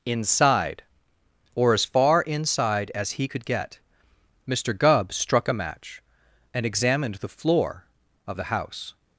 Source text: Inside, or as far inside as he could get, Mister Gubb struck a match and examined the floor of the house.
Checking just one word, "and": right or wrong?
right